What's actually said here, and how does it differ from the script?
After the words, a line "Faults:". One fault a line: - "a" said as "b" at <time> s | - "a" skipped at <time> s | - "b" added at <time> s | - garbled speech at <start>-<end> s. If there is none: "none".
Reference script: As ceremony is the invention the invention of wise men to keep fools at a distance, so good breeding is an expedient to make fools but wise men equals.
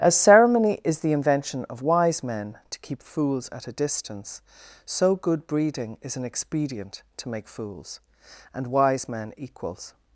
As ceremony is the invention of wise men to keep fools at a distance, so good breeding is an expedient to make fools and wise men equals.
Faults:
- "the invention" skipped at 1.6 s
- "but" said as "and" at 8.5 s